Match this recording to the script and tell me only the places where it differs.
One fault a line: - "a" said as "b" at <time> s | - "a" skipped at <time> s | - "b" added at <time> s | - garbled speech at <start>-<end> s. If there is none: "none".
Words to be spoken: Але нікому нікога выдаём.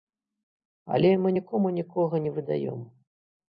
- "мы" added at 1.2 s
- "не" added at 2.3 s